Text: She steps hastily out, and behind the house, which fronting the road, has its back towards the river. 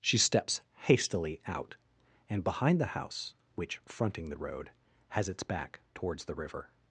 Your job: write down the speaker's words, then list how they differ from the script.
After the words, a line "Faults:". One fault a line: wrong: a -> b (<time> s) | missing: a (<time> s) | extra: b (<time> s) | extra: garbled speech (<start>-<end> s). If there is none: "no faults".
She steps hastily out, and behind the house, which fronting the road, has its back towards the river.
Faults:
no faults